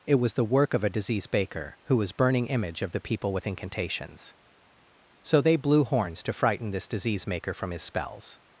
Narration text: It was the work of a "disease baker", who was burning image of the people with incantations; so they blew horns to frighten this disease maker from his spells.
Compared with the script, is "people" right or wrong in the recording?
right